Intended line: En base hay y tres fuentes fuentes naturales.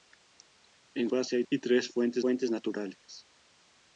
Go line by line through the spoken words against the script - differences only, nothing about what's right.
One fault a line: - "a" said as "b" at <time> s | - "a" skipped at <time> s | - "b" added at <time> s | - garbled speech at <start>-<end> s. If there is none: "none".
none